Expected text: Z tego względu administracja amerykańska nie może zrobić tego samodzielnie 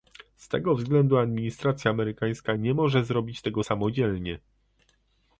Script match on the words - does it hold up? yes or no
yes